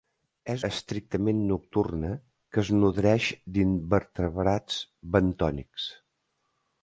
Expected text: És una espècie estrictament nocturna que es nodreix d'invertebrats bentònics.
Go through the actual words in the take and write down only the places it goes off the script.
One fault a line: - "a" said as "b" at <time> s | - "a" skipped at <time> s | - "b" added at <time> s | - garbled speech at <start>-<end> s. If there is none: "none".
- "una espècie" skipped at 0.6 s